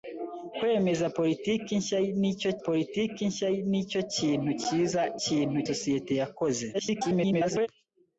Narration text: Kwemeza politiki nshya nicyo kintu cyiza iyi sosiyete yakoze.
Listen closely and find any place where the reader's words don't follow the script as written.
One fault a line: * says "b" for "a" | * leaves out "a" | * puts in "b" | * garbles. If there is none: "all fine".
* puts in "politiki nshya nicyo"
* says "kintu" for "iyi"
* garbles